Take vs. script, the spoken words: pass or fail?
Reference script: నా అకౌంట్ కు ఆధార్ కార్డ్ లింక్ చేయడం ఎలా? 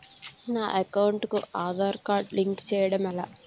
pass